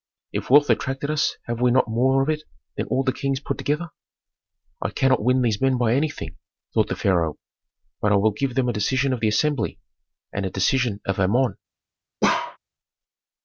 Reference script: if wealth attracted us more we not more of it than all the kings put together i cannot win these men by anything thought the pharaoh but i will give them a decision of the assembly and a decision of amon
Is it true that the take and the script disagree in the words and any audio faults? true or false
true